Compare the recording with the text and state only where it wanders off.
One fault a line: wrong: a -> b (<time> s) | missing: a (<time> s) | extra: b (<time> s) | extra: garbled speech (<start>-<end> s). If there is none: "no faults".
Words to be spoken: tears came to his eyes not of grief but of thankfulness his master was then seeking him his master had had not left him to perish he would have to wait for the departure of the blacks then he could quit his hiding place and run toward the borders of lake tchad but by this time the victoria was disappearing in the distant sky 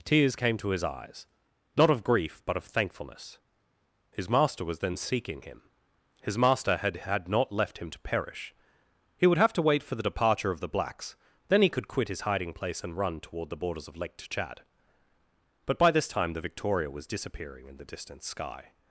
no faults